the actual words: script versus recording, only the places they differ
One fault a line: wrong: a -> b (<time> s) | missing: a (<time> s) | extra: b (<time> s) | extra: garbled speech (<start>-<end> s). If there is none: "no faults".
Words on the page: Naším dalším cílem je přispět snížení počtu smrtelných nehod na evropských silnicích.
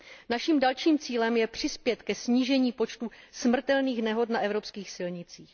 extra: ke (2.0 s)